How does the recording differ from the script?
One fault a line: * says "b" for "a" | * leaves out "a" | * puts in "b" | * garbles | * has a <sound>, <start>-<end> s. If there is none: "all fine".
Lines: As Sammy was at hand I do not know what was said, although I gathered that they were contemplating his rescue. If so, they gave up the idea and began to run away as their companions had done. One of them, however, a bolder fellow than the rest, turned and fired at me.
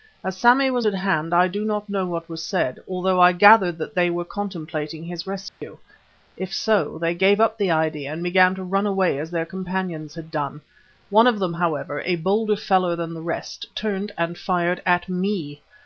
* has a dropout, 5.5-5.6 s